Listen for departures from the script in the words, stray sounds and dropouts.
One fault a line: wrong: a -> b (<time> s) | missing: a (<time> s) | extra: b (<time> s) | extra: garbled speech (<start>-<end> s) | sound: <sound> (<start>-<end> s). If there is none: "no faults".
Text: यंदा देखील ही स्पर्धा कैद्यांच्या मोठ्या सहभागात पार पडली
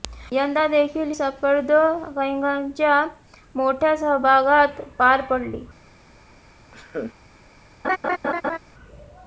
missing: ही (1.1 s)
sound: laugh (6.7-7.1 s)
sound: laugh (7.8-8.6 s)